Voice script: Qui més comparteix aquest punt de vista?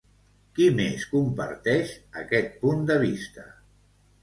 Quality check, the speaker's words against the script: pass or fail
pass